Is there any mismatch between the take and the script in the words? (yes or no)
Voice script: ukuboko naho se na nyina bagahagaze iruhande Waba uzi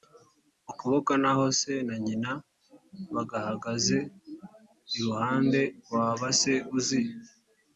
yes